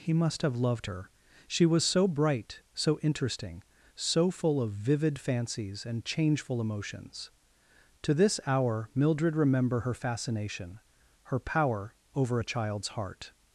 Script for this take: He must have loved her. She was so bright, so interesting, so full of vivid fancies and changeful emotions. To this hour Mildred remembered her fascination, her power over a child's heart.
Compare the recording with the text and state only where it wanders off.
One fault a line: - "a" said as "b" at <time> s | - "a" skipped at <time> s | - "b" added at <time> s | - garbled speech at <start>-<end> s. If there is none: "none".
- "remembered" said as "remember" at 9.3 s